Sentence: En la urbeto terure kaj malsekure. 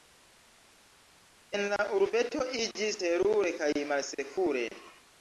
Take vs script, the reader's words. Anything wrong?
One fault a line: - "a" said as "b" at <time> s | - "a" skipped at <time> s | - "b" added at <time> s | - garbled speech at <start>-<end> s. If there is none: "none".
- "iĝis" added at 2.6 s